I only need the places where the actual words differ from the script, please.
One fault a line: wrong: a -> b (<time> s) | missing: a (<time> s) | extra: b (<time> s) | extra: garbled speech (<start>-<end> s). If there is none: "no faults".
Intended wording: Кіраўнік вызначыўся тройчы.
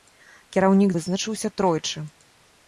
no faults